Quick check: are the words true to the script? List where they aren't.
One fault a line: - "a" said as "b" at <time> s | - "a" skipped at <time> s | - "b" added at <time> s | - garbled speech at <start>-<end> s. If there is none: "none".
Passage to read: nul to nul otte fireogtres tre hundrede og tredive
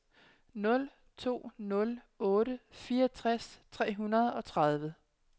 none